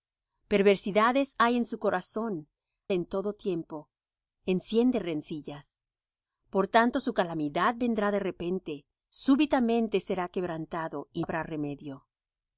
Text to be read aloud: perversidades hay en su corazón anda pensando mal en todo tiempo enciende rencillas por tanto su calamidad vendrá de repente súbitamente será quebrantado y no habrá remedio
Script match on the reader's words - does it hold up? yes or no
no